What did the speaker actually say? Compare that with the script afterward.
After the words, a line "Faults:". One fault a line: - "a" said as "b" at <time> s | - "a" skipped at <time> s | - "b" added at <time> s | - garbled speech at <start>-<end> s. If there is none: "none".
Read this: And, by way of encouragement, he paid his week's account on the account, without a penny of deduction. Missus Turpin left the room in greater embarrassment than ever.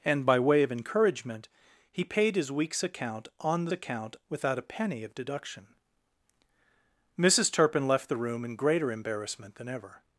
And, by way of encouragement, he paid his week's account on the account, without a penny of deduction. Missus Turpin left the room in greater embarrassment than ever.
Faults:
none